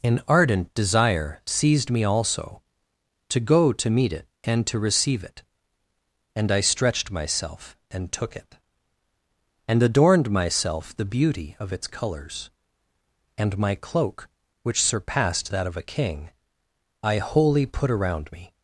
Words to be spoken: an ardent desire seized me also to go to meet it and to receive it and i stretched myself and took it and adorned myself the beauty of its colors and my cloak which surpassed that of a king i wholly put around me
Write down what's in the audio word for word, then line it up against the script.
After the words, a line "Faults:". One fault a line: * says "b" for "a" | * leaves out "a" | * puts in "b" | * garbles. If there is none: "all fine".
an ardent desire seized me also to go to meet it and to receive it and i stretched myself and took it and adorned myself the beauty of its colors and my cloak which surpassed that of a king i wholly put around me
Faults:
all fine